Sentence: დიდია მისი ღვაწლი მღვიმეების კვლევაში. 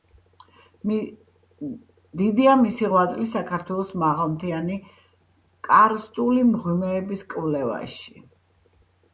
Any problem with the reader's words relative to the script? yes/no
yes